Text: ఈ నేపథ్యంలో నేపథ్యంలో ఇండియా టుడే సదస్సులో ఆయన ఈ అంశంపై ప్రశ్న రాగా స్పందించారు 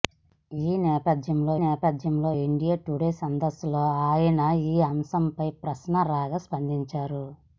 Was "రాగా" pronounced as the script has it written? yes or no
yes